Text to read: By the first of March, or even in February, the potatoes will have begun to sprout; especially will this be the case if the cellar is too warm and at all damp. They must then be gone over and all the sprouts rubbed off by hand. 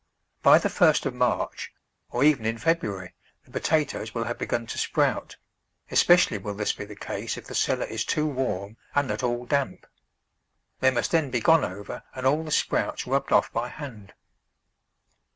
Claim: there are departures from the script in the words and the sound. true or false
false